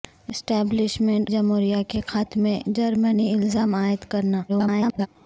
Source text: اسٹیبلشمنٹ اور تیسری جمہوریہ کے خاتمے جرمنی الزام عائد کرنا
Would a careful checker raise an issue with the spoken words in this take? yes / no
yes